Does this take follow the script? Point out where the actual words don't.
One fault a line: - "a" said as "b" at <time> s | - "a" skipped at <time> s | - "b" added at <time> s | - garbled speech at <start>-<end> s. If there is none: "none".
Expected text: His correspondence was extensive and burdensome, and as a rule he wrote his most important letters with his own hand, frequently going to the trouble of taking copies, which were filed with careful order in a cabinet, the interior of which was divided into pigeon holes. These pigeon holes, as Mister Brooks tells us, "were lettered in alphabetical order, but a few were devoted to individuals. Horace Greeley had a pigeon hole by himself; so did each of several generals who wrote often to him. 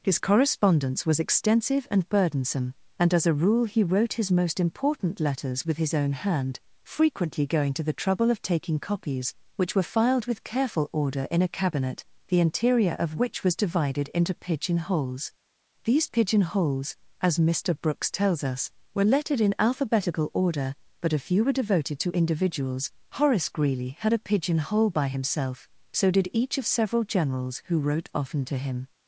none